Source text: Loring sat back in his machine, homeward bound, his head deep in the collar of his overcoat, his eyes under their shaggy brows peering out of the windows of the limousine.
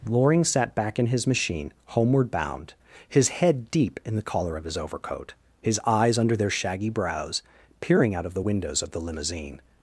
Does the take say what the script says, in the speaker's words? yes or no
yes